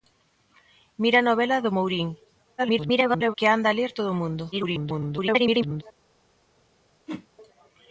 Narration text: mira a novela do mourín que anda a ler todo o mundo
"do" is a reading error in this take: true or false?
false